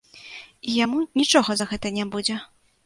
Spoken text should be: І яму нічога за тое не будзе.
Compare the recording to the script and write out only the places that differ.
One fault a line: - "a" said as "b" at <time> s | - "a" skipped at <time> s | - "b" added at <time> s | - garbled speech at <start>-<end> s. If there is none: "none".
- "тое" said as "гэта" at 1.7 s